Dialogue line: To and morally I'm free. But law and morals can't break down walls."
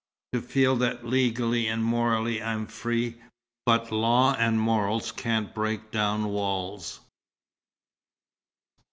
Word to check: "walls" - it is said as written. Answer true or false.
true